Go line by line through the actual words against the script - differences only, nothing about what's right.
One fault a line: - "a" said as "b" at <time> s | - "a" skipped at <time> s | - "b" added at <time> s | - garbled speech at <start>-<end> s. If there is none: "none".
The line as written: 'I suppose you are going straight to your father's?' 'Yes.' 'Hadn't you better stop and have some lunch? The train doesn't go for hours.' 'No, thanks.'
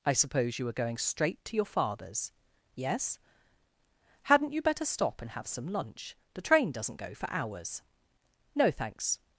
- "are" said as "were" at 0.7 s